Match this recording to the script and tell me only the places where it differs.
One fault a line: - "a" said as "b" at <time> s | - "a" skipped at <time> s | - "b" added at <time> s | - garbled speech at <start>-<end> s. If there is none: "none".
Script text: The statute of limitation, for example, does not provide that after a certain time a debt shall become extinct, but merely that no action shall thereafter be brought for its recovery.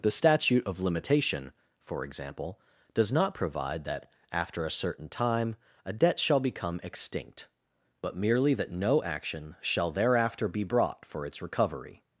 none